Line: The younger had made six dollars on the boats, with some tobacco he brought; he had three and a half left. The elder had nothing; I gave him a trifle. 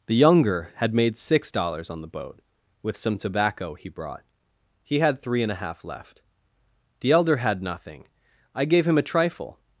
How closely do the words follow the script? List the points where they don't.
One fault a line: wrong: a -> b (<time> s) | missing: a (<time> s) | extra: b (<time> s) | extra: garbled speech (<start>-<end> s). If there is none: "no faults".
wrong: boats -> boat (2.1 s)